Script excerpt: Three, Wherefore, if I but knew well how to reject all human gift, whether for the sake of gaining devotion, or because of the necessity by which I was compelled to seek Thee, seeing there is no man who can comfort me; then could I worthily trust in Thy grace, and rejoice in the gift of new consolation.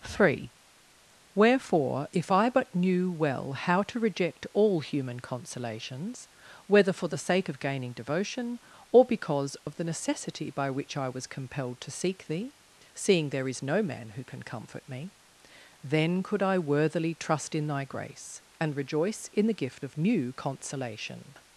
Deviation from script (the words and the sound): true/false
true